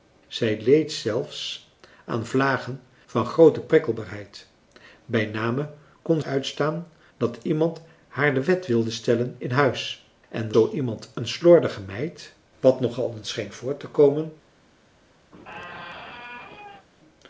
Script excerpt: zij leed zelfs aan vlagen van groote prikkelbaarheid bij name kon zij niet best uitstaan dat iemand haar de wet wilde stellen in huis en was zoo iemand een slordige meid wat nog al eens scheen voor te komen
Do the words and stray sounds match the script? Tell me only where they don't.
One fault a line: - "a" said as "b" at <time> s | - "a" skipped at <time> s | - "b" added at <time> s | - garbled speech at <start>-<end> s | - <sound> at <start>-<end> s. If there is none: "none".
- "zij niet best" skipped at 6.2 s
- "was" skipped at 10.5 s
- squeak at 15.3-16.9 s